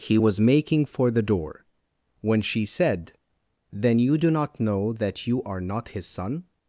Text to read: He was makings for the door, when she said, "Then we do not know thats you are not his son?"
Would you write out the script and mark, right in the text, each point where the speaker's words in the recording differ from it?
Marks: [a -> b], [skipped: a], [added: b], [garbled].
He was [makings -> making] for the door, when she said, "Then [we -> you] do not know [thats -> that] you are not his son?"